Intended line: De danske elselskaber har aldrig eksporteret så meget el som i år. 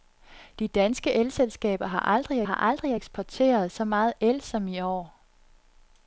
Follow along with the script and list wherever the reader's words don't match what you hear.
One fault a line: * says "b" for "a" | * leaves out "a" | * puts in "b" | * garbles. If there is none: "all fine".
* puts in "har aldrig"